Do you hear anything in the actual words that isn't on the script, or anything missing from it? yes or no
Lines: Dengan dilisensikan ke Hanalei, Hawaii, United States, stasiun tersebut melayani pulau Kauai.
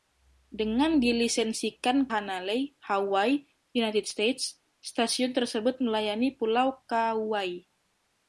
yes